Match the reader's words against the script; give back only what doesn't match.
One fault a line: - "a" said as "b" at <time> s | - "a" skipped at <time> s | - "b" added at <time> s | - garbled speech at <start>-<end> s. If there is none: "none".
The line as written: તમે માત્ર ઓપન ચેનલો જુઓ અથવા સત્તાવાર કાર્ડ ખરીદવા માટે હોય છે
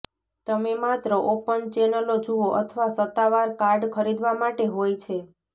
none